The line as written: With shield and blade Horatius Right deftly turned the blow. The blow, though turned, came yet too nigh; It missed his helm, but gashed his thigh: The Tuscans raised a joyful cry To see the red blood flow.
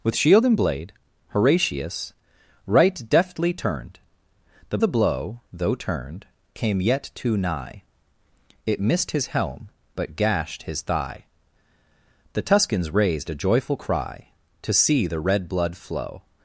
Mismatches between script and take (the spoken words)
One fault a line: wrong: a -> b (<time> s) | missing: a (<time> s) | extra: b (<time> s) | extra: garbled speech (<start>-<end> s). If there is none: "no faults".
missing: blow (4.8 s)